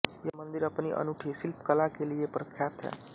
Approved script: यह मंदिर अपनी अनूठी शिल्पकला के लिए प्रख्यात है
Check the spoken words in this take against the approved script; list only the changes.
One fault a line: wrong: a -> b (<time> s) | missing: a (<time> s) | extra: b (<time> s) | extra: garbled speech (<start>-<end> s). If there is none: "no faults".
no faults